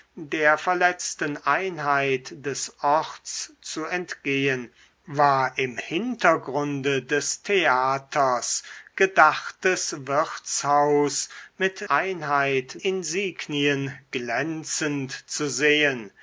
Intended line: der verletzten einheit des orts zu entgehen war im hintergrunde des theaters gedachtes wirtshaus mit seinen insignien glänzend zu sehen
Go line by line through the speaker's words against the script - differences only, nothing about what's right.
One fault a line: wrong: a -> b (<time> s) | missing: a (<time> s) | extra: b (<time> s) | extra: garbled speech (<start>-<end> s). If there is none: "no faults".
wrong: seinen -> einheit (11.9 s)